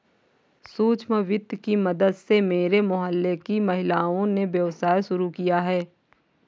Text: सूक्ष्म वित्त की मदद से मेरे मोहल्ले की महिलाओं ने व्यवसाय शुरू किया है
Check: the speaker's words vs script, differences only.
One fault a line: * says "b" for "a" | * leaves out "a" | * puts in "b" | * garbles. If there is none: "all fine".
all fine